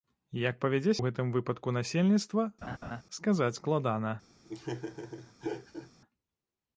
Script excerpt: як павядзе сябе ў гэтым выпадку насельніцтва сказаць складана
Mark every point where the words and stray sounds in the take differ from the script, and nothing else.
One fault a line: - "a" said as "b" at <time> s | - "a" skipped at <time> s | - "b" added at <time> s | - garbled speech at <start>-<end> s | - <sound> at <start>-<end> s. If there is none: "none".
- "сябе" skipped at 0.9 s
- laugh at 2.6-3.0 s
- laugh at 4.4-5.9 s